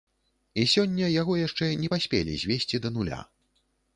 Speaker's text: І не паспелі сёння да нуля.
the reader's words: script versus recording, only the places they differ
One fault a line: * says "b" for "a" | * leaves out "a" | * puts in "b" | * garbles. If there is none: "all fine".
* puts in "сёння яго яшчэ"
* says "звесці" for "сёння"